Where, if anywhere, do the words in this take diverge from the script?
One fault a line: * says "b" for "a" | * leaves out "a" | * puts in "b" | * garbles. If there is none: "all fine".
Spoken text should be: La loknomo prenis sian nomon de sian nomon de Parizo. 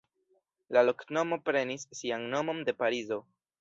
* leaves out "sian nomon de"